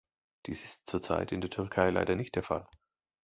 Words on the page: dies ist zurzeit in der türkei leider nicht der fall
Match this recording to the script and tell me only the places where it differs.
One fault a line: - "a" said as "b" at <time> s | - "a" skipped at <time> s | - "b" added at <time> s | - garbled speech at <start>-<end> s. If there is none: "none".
none